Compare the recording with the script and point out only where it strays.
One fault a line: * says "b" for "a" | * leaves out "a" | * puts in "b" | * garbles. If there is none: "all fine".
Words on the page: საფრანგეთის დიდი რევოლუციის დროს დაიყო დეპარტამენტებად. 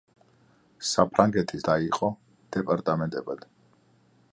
* leaves out "დიდი რევოლუციის დროს"